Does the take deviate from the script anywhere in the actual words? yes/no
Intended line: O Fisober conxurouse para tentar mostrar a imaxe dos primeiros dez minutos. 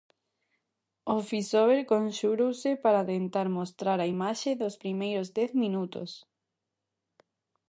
no